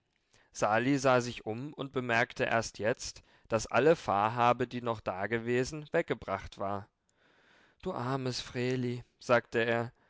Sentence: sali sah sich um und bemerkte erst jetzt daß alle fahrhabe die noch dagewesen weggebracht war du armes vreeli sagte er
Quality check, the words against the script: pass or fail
pass